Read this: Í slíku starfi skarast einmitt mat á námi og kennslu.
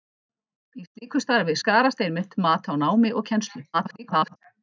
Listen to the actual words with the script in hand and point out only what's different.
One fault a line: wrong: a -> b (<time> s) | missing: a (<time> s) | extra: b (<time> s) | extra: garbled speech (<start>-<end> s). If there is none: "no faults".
extra: garbled speech (3.7-4.4 s)